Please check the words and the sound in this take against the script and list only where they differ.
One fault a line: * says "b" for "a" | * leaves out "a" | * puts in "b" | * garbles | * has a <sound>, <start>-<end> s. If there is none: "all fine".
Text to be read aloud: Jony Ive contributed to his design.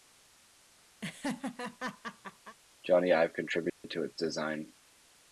* has a laugh, 1.0-2.6 s
* has a dropout, 3.7-3.8 s
* says "its" for "his"